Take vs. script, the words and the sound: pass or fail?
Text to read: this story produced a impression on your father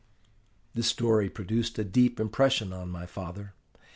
fail